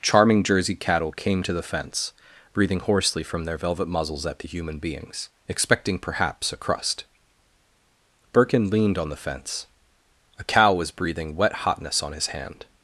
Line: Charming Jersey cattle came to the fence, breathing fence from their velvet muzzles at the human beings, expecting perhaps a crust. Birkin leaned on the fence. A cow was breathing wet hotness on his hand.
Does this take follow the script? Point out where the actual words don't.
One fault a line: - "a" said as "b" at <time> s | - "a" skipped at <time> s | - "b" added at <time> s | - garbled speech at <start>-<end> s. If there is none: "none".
- "fence" said as "hoarsely" at 2.8 s